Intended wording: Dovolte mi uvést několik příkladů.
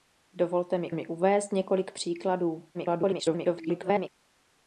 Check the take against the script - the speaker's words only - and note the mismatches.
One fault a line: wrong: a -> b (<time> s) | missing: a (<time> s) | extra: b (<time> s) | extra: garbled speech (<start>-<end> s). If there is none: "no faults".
extra: mi (0.9 s)
extra: garbled speech (2.7-4.1 s)